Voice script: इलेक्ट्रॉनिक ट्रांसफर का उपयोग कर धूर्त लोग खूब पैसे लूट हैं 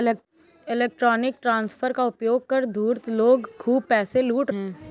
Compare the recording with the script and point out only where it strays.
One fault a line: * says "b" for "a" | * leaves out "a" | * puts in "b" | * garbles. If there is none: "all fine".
all fine